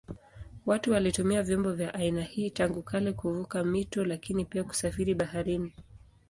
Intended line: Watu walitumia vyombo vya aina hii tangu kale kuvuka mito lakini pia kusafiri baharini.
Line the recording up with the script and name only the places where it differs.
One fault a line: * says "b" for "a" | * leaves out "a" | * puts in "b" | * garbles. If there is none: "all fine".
all fine